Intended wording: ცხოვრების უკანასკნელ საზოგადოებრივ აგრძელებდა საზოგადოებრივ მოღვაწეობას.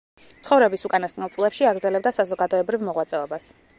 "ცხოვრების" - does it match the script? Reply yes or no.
yes